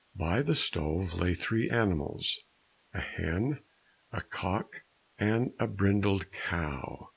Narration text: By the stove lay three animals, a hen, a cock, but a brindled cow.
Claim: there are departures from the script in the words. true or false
true